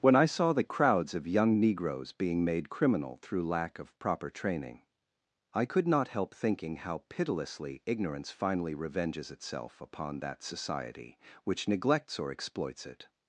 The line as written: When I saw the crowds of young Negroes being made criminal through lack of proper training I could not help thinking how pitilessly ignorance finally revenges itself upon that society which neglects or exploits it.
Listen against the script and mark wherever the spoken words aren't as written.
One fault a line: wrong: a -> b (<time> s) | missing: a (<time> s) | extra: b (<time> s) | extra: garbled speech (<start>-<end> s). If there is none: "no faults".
no faults